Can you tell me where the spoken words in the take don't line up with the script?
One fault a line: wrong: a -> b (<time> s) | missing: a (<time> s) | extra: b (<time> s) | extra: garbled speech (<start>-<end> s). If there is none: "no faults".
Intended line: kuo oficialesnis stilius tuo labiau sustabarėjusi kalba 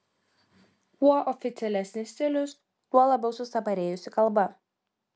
no faults